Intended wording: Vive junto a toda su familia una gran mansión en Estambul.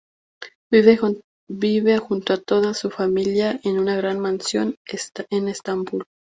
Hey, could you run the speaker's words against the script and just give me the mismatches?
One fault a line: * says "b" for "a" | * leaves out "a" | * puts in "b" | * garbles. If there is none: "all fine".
* puts in "en"